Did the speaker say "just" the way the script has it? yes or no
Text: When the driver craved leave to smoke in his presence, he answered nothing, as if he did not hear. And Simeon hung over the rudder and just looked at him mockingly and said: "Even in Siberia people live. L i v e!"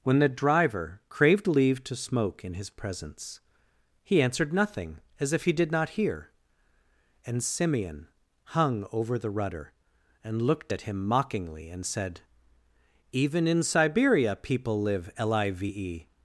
no